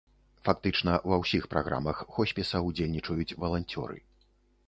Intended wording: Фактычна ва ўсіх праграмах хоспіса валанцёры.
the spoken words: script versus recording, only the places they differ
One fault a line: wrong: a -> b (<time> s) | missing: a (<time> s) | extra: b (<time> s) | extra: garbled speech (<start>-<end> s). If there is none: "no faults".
extra: ўдзельнічаюць (2.7 s)